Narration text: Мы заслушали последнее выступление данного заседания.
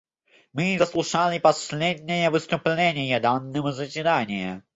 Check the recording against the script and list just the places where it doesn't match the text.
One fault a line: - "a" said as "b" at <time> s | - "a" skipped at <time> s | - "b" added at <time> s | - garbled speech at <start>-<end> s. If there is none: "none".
none